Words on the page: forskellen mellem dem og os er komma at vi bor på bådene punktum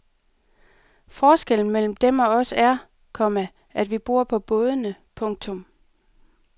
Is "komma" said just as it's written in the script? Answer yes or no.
yes